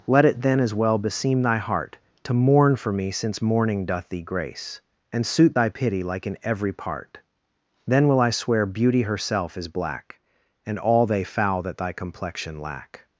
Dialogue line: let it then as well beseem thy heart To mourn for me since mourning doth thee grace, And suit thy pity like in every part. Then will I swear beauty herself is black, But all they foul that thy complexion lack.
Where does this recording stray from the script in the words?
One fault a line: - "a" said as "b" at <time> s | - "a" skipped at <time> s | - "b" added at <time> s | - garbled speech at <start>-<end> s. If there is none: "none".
- "But" said as "And" at 10.7 s